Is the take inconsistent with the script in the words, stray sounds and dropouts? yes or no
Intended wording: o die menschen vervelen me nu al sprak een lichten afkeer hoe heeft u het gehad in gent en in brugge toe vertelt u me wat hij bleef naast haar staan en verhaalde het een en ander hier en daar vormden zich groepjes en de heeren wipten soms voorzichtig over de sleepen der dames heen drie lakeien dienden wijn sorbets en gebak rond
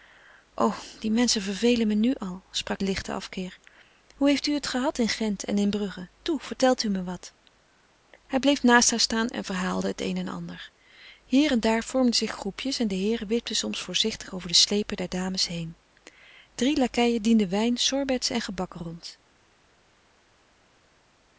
no